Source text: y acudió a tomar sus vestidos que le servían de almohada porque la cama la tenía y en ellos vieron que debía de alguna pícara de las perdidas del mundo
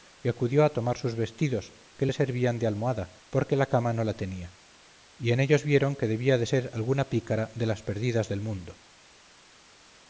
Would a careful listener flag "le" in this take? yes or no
no